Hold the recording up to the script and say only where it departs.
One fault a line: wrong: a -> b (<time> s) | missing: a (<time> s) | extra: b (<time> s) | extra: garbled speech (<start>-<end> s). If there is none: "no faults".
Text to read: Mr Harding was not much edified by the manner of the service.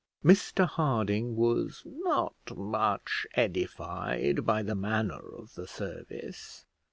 no faults